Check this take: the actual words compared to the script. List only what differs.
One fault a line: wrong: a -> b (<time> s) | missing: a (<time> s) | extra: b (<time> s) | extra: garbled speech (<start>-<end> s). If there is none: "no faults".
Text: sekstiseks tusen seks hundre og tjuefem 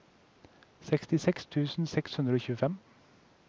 no faults